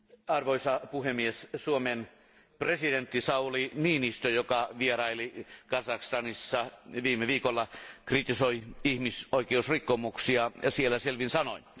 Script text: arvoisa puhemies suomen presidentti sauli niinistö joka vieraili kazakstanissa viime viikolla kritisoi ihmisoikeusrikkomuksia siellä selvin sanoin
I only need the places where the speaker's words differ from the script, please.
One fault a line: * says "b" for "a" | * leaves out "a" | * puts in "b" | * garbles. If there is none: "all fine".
all fine